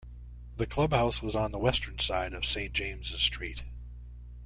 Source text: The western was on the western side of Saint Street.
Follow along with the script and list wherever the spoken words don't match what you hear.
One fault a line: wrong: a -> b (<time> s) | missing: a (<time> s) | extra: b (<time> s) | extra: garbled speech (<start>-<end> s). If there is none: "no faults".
wrong: western -> clubhouse (0.7 s)
extra: James's (2.7 s)